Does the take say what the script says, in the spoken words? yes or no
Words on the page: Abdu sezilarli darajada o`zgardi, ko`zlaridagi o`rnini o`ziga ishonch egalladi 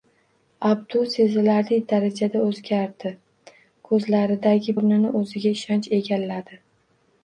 yes